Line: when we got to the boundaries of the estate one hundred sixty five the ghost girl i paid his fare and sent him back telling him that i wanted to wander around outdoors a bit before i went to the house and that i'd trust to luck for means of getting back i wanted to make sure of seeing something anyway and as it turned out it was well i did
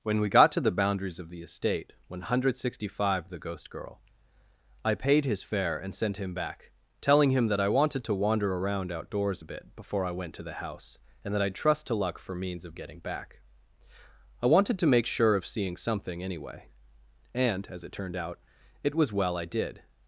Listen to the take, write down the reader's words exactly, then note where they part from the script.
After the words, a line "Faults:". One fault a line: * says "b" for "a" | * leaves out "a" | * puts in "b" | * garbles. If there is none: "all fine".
when we got to the boundaries of the estate one hundred sixty five the ghost girl i paid his fare and sent him back telling him that i wanted to wander around outdoors a bit before i went to the house and that i'd trust to luck for means of getting back i wanted to make sure of seeing something anyway and as it turned out it was well i did
Faults:
all fine